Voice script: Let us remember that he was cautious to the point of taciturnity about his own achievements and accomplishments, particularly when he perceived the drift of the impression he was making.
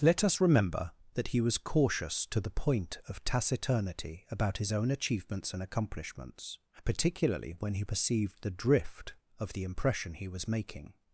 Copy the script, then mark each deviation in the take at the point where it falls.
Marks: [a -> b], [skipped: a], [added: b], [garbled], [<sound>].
Let us remember that he was cautious to the point of taciturnity about his own achievements and accomplishments, particularly when he perceived the drift of the impression he was making.